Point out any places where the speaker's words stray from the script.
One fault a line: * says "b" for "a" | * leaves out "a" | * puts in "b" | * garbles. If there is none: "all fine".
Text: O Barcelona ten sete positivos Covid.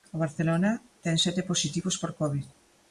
* puts in "por"